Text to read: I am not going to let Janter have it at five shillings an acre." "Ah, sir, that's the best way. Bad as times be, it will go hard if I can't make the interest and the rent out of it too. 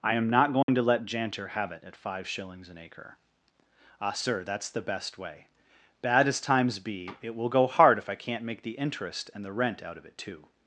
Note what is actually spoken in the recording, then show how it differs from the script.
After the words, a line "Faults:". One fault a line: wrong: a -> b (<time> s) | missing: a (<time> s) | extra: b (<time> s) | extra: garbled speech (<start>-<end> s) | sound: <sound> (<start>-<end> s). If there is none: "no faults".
I am not going to let Janter have it at five shillings an acre." "Ah, sir, that's the best way. Bad as times be, it will go hard if I can't make the interest and the rent out of it too.
Faults:
sound: dropout (0.6-0.7 s)